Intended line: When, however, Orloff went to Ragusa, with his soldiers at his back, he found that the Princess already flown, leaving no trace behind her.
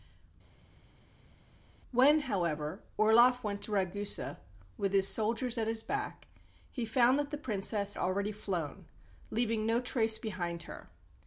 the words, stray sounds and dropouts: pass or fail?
pass